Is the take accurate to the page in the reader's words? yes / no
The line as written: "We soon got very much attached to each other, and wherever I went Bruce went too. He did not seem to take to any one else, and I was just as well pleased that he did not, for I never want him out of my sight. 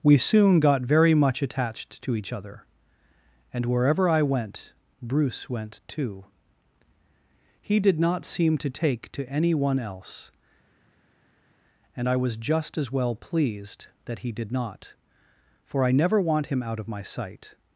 yes